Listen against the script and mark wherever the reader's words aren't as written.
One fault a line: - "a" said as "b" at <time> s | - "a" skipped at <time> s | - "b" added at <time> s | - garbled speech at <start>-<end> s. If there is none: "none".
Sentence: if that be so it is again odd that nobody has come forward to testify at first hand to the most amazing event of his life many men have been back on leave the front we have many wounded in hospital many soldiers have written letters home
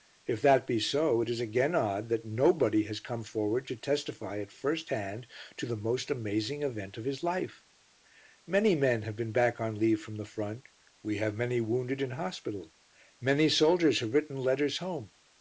- "from" added at 10.0 s